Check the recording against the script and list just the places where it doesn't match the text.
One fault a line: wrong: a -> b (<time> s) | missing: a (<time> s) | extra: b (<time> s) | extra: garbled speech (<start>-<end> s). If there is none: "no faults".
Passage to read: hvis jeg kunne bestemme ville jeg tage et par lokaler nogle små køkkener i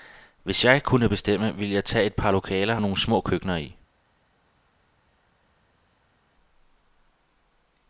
no faults